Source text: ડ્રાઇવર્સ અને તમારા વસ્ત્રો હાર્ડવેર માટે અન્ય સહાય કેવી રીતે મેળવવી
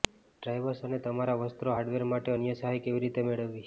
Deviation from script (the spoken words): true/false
false